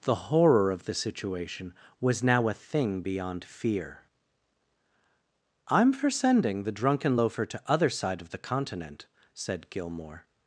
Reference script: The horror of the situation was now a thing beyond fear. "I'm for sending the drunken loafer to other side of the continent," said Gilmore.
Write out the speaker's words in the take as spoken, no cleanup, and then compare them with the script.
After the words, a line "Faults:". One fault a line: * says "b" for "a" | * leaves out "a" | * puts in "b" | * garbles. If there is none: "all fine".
The horror of the situation was now a thing beyond fear. "I'm for sending the drunken loafer to other side of the continent," said Gilmore.
Faults:
all fine